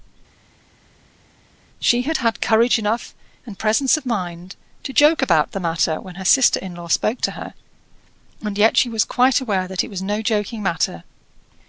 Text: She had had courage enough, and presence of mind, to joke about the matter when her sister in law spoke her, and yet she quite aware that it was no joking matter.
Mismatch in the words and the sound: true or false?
true